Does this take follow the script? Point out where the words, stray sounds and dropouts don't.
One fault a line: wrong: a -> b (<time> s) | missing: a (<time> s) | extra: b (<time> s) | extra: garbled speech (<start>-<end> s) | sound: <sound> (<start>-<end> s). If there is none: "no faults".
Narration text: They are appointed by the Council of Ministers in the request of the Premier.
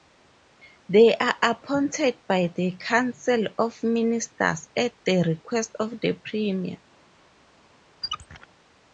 wrong: in -> at (4.8 s)
sound: squeak (8.0-8.5 s)